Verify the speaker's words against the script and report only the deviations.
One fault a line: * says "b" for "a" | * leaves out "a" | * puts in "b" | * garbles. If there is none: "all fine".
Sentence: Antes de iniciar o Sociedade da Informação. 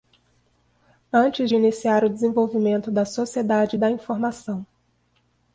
* puts in "desenvolvimento da"